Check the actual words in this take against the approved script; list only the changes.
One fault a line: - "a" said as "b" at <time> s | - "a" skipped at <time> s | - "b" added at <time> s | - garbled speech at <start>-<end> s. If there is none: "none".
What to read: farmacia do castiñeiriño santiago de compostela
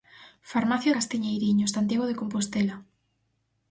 - "do" skipped at 0.9 s